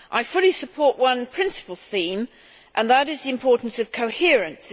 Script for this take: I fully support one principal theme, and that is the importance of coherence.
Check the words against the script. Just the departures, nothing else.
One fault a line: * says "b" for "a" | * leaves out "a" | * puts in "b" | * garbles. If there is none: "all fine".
all fine